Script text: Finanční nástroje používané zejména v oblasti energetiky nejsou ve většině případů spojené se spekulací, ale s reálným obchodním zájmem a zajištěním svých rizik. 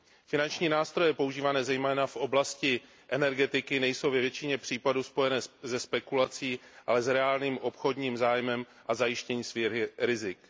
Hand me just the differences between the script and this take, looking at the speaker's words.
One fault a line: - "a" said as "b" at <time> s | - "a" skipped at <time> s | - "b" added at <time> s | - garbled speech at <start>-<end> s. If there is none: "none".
none